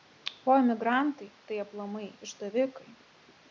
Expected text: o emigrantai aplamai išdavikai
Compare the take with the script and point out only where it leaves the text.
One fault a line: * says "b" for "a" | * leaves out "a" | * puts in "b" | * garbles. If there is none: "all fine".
* puts in "tai"